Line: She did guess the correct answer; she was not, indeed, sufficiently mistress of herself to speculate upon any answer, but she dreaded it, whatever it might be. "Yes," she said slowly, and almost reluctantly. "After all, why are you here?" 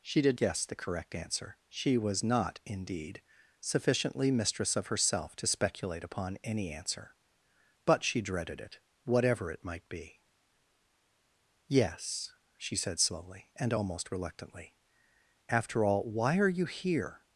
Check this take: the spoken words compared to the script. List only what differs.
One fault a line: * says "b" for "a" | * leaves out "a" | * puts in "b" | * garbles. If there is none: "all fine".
all fine